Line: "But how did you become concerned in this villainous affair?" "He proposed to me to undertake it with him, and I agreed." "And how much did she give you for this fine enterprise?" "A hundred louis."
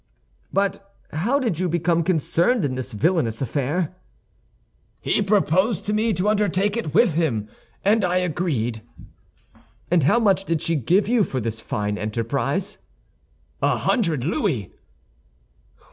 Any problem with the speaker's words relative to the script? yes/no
no